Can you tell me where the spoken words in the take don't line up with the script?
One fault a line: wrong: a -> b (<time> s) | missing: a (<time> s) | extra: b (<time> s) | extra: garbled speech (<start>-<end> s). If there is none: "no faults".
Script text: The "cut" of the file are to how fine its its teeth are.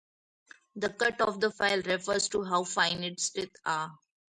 wrong: are -> refers (1.8 s)
missing: its (3.3 s)